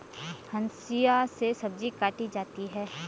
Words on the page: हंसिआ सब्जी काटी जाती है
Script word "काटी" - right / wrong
right